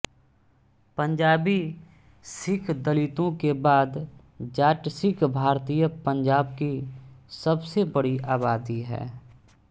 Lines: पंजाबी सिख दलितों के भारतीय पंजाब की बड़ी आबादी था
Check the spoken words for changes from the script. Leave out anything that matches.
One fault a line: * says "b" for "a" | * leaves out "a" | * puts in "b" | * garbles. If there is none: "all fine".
* puts in "बाद जाट सिख"
* puts in "सबसे"
* says "है" for "था"